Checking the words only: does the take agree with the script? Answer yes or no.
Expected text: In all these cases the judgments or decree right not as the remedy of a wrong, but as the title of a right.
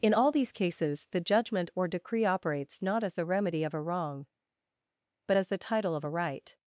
no